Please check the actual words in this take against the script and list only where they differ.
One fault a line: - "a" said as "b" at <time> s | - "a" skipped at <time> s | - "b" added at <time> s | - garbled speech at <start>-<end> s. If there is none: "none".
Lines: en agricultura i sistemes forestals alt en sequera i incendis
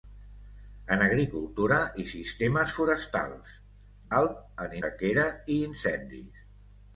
none